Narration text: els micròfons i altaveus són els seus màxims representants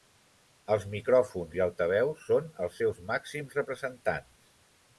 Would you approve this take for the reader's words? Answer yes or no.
yes